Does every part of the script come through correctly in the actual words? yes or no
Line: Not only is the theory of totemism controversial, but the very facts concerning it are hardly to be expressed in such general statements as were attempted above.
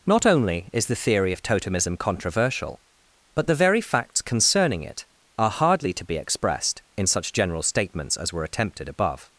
yes